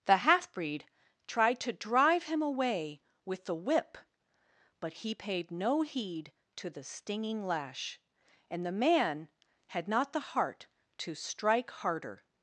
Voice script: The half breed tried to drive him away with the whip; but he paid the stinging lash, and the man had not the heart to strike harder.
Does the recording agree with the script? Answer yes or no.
no